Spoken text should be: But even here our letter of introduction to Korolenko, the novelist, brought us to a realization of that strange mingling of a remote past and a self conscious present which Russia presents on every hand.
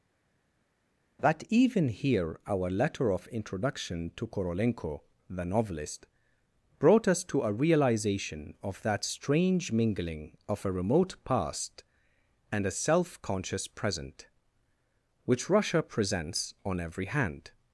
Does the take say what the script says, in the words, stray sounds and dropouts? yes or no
no